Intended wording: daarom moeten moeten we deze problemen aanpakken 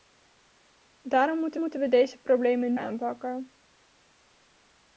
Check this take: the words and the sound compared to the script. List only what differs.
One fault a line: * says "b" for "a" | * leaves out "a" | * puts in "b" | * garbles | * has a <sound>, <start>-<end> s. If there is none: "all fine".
all fine